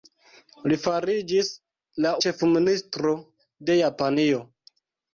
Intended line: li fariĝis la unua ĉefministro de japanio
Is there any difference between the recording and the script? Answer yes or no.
yes